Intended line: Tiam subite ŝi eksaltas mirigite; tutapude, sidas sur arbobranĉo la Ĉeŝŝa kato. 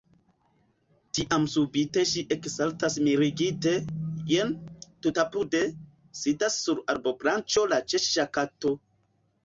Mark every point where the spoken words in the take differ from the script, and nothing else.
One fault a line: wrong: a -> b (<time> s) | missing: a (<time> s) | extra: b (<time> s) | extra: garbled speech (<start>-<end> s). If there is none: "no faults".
extra: jen (4.3 s)